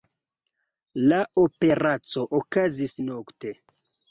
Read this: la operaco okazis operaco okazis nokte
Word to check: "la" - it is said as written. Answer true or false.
true